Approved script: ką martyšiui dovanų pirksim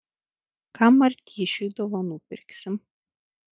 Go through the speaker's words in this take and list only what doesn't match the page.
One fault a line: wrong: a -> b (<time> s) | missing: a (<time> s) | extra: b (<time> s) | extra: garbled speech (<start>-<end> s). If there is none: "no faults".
no faults